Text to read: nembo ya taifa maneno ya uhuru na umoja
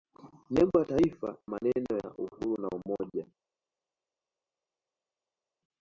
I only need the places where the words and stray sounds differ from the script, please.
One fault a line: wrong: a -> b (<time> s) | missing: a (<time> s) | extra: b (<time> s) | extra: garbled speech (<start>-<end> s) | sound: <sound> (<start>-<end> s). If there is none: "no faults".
no faults